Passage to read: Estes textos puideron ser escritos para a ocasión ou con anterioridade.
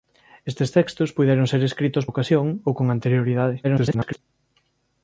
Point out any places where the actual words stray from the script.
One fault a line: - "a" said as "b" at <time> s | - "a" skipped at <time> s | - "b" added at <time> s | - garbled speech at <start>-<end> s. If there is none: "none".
- "para" skipped at 2.0 s
- garbled speech at 3.6-4.2 s